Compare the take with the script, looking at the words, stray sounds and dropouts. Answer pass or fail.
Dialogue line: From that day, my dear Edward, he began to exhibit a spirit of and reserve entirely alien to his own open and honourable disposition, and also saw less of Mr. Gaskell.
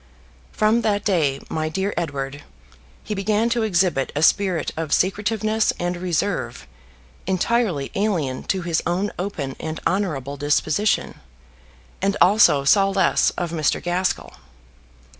fail